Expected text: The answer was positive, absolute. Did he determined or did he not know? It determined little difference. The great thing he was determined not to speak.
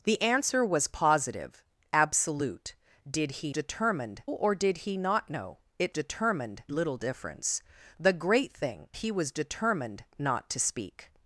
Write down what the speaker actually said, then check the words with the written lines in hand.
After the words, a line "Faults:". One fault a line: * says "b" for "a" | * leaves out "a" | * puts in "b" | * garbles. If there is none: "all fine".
The answer was positive, absolute. Did he determined or did he not know? It determined little difference. The great thing he was determined not to speak.
Faults:
all fine